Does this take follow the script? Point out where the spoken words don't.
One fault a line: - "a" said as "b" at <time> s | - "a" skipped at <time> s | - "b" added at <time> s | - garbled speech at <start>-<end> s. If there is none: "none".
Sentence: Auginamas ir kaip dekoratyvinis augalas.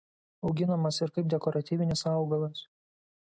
none